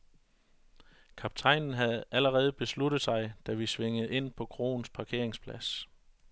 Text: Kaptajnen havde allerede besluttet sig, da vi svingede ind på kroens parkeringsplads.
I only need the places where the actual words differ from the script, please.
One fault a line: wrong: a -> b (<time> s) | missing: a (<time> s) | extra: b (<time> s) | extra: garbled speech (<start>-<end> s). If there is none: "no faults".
no faults